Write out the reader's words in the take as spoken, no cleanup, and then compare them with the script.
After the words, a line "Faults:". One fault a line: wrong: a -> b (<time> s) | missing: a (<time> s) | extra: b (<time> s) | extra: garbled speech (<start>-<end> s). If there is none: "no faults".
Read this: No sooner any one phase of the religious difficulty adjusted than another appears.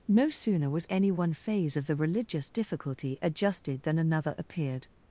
No sooner was any one phase of the religious difficulty adjusted than another appeared.
Faults:
extra: was (0.7 s)
wrong: appears -> appeared (4.4 s)